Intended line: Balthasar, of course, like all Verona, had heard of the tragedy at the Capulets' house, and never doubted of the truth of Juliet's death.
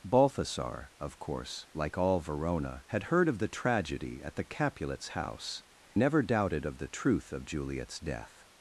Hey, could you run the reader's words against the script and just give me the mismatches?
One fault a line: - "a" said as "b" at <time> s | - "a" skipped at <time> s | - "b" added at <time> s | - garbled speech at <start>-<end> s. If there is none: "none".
- "and" skipped at 5.6 s